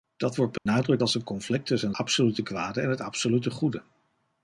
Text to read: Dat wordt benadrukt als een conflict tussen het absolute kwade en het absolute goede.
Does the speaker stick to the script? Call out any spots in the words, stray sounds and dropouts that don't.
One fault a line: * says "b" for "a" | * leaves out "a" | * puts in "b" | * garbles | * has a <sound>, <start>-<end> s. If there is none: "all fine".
* has a dropout, 0.6-0.7 s
* leaves out "het"